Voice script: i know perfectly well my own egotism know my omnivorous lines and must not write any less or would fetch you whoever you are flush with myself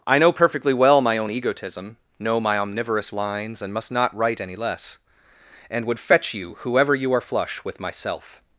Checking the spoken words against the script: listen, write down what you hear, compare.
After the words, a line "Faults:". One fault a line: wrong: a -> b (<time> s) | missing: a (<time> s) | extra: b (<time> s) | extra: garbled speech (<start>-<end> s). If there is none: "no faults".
i know perfectly well my own egotism know my omnivorous lines and must not write any less and would fetch you whoever you are flush with myself
Faults:
wrong: or -> and (5.7 s)